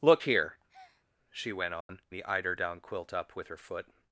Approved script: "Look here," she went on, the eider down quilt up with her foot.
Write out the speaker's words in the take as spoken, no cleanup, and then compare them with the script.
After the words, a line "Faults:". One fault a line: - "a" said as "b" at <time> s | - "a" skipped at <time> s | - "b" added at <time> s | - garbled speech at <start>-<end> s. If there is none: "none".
"Look here," she went on, the eider down quilt up with her foot.
Faults:
none